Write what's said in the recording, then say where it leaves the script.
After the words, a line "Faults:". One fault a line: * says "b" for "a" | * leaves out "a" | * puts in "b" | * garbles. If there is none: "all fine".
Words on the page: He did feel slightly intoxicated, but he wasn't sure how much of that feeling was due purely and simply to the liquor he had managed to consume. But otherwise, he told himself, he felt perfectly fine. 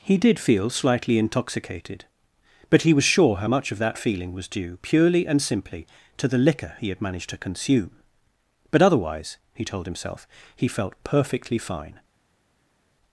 He did feel slightly intoxicated, but he was sure how much of that feeling was due purely and simply to the liquor he had managed to consume. But otherwise, he told himself, he felt perfectly fine.
Faults:
* says "was" for "wasn't"